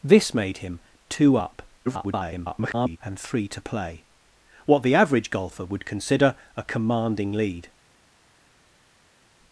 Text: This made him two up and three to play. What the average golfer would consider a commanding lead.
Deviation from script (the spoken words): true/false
true